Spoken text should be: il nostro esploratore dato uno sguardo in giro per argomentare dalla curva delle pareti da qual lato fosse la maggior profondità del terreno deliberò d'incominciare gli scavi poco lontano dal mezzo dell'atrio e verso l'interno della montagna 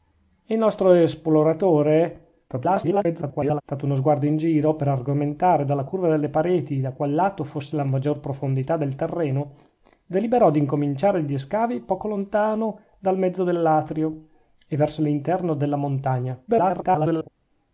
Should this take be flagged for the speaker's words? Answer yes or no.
yes